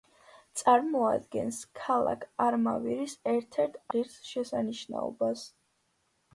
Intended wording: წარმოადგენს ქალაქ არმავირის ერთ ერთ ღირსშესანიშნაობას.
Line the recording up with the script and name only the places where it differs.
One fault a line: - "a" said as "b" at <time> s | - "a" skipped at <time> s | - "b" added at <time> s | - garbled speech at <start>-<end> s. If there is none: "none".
none